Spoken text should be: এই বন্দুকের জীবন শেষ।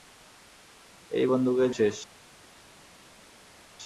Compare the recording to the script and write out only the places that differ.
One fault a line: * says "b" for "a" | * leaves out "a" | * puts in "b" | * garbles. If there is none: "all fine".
* leaves out "জীবন"